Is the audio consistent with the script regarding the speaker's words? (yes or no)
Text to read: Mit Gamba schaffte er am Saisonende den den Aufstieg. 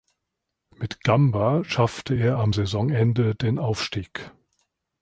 no